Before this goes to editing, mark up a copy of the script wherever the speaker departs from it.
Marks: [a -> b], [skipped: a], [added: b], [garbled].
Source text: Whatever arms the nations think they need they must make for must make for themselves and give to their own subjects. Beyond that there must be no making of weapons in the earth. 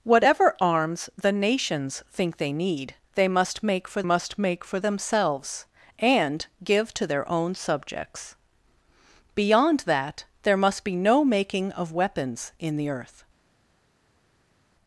Whatever arms the nations think they need they must make for must make for themselves and give to their own subjects. Beyond that there must be no making of weapons in the earth.